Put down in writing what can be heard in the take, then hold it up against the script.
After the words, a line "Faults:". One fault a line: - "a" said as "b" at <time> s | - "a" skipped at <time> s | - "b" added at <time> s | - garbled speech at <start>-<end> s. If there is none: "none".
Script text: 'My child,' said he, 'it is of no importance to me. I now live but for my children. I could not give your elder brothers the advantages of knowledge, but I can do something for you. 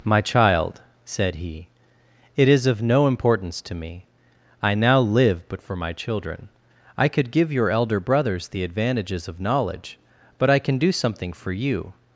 'My child,' said he, 'it is of no importance to me. I now live but for my children. I could give your elder brothers the advantages of knowledge, but I can do something for you.
Faults:
- "not" skipped at 7.3 s